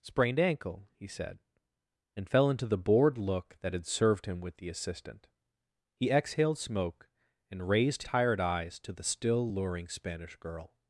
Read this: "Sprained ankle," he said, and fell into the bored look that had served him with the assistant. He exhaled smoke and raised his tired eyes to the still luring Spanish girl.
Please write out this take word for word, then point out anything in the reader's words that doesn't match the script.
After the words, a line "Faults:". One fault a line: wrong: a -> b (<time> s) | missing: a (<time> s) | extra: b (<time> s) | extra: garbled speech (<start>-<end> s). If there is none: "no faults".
"Sprained ankle," he said, and fell into the bored look that had served him with the assistant. He exhaled smoke and raised tired eyes to the still luring Spanish girl.
Faults:
missing: his (8.0 s)